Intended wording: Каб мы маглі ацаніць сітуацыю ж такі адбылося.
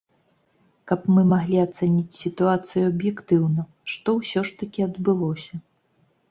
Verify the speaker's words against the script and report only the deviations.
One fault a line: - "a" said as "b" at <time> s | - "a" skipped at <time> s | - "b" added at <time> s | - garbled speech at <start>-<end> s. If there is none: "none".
- "аб'ектыўна што ўсё" added at 2.9 s